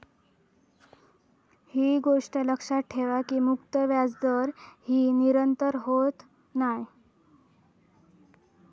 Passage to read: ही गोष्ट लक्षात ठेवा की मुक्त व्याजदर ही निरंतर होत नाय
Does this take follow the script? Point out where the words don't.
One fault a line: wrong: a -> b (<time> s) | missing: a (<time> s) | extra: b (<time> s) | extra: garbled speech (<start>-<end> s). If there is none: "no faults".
no faults